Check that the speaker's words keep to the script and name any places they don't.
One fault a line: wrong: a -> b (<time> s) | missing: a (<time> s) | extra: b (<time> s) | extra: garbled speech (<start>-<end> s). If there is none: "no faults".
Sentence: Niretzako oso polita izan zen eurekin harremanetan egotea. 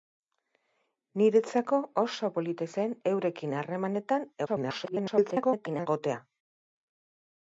missing: izan (2.7 s)
extra: garbled speech (4.5-5.9 s)